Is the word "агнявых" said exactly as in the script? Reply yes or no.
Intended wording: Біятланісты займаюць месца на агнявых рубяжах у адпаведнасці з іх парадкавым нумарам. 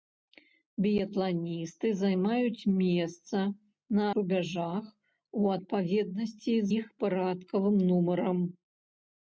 no